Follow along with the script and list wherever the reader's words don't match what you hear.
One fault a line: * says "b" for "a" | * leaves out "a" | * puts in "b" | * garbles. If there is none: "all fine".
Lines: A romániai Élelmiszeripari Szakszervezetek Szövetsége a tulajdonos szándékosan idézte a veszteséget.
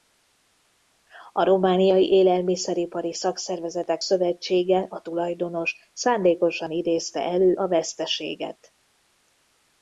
* puts in "elő"